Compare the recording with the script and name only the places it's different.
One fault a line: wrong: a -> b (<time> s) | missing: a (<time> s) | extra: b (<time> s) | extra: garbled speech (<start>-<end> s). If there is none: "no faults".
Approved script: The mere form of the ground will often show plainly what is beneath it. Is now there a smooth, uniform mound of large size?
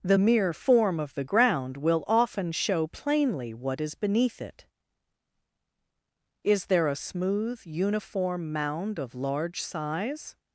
missing: now (6.7 s)